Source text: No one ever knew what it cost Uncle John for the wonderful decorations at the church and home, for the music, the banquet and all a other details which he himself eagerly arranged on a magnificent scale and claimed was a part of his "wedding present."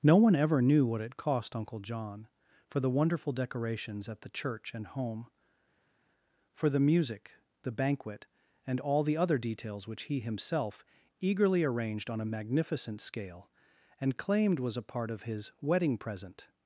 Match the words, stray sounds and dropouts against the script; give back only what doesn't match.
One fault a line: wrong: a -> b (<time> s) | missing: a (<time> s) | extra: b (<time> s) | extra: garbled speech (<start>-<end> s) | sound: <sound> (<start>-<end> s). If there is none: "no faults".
wrong: a -> the (9.0 s)